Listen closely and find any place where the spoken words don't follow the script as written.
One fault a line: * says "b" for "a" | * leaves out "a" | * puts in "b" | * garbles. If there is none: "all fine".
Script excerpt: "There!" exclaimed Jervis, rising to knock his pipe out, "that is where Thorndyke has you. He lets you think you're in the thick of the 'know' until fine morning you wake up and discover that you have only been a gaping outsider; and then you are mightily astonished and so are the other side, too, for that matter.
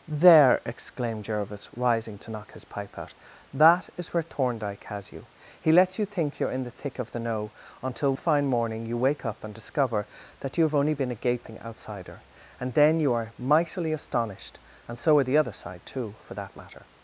all fine